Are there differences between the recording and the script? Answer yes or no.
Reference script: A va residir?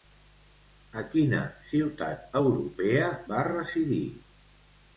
yes